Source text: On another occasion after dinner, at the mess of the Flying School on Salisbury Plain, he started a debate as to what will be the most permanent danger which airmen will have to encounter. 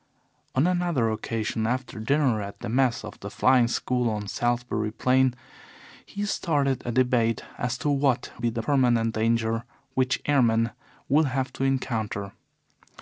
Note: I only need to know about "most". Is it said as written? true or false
false